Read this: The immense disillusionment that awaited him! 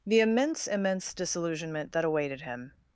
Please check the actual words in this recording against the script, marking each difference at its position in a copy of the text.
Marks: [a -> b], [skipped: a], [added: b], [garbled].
The immense [added: immense] disillusionment that awaited him!